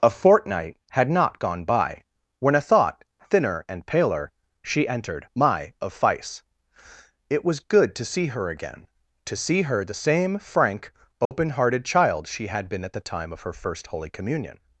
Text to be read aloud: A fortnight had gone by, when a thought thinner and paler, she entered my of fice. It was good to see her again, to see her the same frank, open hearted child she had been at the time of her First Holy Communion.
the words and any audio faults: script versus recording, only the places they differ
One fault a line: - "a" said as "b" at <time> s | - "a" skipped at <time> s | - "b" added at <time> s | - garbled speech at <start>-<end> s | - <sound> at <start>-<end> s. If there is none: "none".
- "not" added at 1.1 s
- dropout at 11.2-11.3 s